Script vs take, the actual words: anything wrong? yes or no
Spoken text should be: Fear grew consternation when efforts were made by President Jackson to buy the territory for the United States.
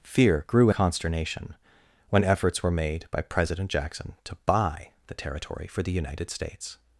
no